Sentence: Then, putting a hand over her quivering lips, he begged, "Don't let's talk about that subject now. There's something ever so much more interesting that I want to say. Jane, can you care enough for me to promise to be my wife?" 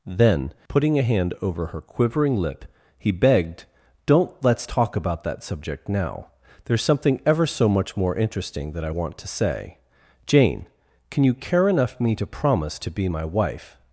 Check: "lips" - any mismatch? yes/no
yes